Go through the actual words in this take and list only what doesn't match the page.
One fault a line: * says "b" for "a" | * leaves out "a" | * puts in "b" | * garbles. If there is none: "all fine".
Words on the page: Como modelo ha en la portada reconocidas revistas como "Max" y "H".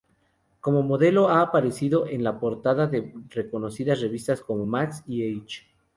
* puts in "aparecido"
* puts in "de"